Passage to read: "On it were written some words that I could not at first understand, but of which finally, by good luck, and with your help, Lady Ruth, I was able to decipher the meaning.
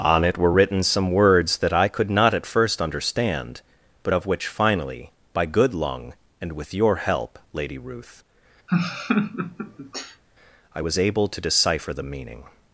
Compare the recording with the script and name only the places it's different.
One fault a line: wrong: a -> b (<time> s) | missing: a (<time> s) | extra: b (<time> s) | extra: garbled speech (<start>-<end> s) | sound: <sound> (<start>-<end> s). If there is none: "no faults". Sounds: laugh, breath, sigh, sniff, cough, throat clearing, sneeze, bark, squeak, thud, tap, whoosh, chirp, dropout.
wrong: luck -> lung (5.7 s)
sound: laugh (8.7-10.2 s)